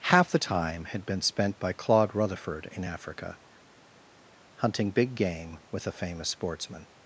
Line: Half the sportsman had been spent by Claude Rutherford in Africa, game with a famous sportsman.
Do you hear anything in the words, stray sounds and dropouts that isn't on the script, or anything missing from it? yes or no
yes